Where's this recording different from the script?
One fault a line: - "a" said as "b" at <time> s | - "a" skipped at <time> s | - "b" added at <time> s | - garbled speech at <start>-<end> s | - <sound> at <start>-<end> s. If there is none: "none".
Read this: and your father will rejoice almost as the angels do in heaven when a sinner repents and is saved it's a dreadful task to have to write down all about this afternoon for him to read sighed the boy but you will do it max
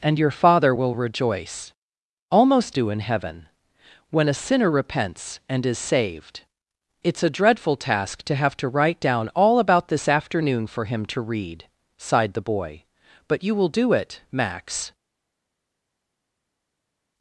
- "as the angels" skipped at 2.8 s